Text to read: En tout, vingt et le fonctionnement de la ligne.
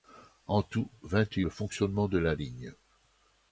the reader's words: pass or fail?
pass